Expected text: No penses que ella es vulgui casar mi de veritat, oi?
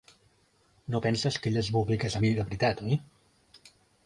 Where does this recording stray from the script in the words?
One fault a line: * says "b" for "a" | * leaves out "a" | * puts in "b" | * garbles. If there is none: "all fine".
all fine